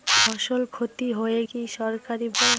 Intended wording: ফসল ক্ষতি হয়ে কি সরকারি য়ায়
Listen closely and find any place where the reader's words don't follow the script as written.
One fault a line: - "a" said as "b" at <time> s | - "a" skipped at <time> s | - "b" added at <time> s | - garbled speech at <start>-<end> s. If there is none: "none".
none